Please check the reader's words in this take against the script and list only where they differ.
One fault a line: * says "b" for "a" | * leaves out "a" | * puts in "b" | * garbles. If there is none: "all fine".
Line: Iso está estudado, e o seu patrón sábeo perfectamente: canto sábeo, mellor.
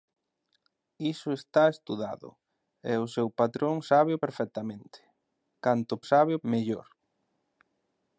all fine